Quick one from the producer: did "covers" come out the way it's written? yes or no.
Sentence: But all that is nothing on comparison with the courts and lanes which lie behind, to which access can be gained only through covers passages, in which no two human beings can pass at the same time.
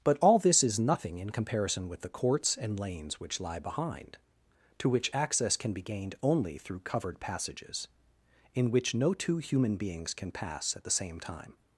no